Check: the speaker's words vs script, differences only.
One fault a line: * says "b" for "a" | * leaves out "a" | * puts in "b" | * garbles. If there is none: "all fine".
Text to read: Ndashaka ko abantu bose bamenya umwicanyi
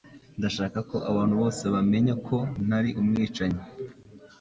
* puts in "ko ntari"